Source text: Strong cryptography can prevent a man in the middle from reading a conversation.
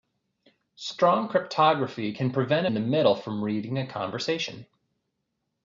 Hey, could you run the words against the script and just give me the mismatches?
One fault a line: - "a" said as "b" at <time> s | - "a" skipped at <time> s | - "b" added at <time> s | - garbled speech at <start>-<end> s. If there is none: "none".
- "man" skipped at 2.7 s